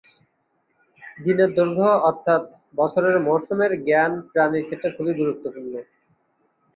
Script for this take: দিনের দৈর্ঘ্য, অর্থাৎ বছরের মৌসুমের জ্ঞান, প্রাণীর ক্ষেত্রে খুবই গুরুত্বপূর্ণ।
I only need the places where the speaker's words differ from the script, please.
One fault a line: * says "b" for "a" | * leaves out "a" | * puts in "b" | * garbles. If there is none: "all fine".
all fine